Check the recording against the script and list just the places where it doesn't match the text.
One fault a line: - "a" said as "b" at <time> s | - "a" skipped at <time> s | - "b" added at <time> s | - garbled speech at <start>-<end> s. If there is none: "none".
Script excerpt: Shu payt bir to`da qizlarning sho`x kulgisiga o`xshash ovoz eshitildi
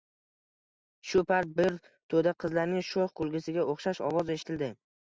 none